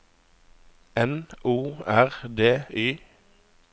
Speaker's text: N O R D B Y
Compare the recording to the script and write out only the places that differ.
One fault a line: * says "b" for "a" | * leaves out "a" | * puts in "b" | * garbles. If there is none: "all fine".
* leaves out "B"